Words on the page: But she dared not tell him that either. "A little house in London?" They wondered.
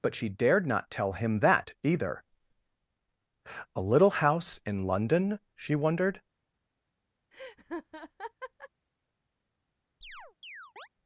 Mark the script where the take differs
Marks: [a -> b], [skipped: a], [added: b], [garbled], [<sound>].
But she dared not tell him that either. "A little house in London?" [They -> She] wondered. [laugh] [chirp]